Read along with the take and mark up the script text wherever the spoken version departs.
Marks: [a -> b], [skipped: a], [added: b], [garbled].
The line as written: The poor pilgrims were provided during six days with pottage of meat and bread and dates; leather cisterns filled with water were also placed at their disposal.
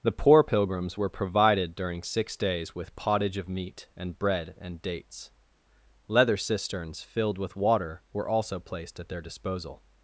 The poor pilgrims were provided during six days with pottage of meat and bread and dates; leather cisterns filled with water were also placed at their disposal.